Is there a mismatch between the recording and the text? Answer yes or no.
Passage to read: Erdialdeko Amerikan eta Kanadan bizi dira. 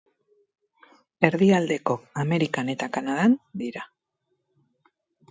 yes